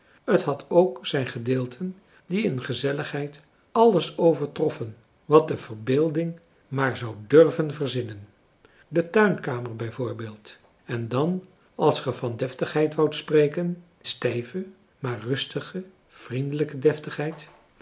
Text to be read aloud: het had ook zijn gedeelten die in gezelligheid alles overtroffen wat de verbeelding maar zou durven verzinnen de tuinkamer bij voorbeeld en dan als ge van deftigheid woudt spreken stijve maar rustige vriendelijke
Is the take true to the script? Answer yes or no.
yes